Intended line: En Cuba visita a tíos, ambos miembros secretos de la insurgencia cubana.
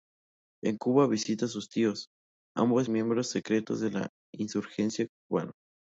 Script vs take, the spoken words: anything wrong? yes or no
yes